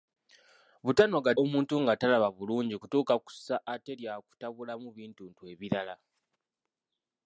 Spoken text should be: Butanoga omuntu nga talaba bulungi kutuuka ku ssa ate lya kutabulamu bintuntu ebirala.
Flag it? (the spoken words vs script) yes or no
no